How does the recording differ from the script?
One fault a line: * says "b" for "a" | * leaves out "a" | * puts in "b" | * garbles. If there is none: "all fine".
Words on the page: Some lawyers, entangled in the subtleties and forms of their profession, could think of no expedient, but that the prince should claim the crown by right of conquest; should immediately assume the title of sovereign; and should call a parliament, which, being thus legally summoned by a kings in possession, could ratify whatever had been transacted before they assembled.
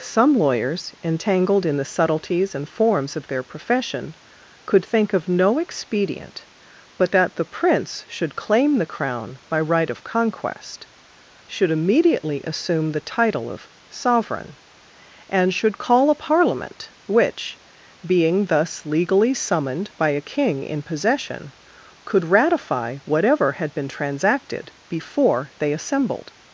* says "king" for "kings"